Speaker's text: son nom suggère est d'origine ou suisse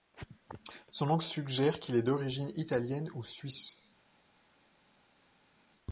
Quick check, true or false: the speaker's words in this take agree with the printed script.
false